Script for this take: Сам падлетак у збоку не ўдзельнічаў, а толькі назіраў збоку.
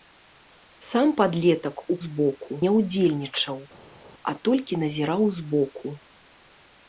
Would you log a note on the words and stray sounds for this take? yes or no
no